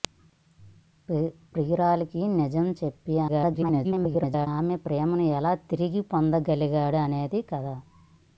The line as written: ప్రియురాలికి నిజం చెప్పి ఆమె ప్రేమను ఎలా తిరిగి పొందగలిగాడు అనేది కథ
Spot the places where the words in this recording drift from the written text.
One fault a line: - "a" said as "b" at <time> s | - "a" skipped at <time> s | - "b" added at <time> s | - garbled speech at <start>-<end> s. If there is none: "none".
- garbled speech at 3.3-4.5 s